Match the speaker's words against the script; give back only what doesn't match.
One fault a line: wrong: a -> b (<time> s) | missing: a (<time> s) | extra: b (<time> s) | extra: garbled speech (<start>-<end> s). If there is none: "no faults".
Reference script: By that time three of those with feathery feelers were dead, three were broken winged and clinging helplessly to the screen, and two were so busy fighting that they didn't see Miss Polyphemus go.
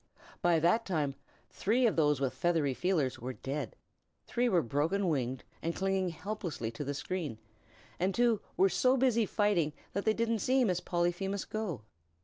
no faults